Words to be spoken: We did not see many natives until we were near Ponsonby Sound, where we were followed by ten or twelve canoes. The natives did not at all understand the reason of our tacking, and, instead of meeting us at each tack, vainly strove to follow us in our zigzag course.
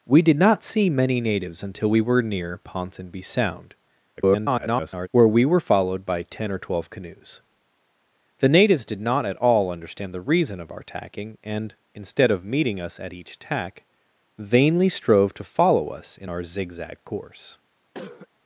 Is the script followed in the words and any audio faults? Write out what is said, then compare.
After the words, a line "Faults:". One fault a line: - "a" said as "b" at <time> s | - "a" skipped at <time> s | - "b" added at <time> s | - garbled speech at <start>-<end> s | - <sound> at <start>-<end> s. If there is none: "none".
We did not see many natives until we were near Ponsonby Sound, [garbled] where we were followed by ten or twelve canoes. The natives did not at all understand the reason of our tacking, and, instead of meeting us at each tack, vainly strove to follow us in our zigzag course.
Faults:
- garbled speech at 4.2-5.1 s
- cough at 17.9-18.3 s